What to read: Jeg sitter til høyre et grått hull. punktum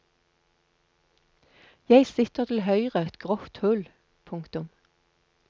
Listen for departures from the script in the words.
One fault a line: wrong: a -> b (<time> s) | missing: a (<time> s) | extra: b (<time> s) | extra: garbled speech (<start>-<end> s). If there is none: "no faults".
no faults